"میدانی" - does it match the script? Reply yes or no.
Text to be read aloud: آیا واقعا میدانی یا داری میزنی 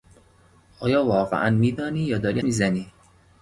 yes